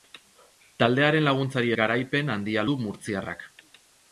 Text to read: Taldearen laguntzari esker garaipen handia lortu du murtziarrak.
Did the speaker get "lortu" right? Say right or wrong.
wrong